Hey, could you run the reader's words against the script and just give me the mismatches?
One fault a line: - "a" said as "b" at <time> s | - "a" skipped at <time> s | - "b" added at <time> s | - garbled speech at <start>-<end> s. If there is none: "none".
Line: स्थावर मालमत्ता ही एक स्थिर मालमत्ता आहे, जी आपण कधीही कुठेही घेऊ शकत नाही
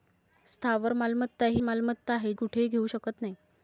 - "एक स्थिर" skipped at 1.6 s
- "जी आपण कधीही" skipped at 2.3 s